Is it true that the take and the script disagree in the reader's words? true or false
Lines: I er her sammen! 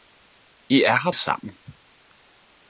false